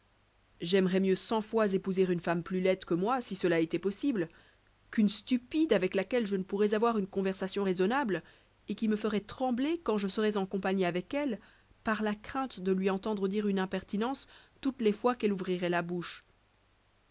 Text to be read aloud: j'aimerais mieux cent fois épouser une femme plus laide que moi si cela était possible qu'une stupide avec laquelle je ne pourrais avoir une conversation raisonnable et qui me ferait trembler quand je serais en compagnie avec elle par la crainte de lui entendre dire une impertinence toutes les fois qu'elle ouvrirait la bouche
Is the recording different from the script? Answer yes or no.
no